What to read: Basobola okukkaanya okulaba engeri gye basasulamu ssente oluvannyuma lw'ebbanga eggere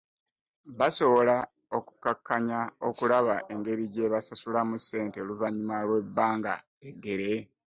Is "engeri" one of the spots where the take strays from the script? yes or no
no